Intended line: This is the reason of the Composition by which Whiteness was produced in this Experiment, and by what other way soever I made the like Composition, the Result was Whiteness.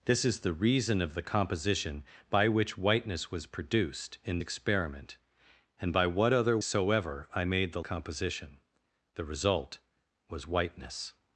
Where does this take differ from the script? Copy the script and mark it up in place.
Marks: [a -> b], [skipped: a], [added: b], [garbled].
This is the reason of the Composition by which Whiteness was produced in [skipped: this] Experiment, and by what other [skipped: way] soever I made the [skipped: like] Composition, the Result was Whiteness.